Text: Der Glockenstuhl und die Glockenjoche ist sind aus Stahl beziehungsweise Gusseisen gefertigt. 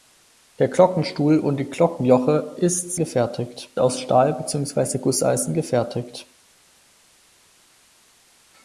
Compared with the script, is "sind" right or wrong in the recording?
wrong